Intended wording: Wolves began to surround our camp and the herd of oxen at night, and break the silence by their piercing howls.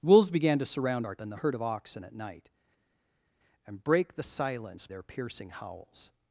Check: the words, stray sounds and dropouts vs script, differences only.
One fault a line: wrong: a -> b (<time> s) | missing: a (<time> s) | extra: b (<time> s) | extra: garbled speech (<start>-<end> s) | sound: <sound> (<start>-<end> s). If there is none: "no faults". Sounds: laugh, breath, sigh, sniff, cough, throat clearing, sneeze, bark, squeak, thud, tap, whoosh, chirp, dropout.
missing: camp (1.2 s)
missing: by (4.9 s)